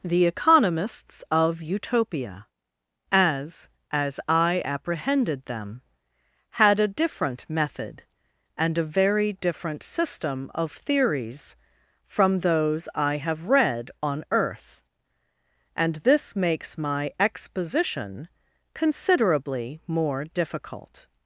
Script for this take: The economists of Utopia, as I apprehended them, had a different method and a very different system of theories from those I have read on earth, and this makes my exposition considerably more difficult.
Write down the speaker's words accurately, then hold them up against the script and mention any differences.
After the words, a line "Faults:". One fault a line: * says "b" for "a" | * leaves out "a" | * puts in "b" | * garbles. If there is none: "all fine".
The economists of Utopia, as as I apprehended them, had a different method and a very different system of theories from those I have read on earth, and this makes my exposition considerably more difficult.
Faults:
* puts in "as"